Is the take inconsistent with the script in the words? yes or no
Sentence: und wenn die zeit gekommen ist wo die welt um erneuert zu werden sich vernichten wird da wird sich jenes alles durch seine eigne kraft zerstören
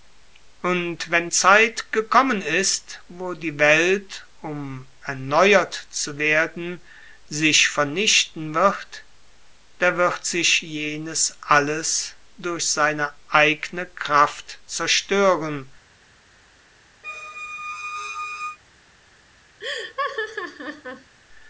yes